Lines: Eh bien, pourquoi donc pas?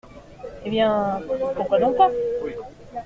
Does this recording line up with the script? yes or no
yes